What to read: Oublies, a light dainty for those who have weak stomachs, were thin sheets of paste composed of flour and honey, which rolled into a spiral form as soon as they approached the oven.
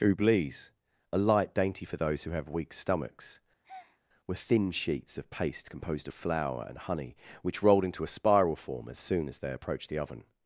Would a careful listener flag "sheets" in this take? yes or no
no